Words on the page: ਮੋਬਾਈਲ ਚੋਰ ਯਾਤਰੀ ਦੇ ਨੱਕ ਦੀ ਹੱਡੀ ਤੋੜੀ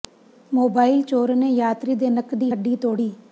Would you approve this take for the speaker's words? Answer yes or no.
no